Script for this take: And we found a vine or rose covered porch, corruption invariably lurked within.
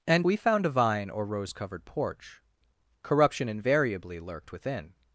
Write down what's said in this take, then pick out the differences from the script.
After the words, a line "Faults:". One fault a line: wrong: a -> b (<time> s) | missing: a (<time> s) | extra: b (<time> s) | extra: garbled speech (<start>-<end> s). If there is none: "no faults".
And we found a vine or rose covered porch, corruption invariably lurked within.
Faults:
no faults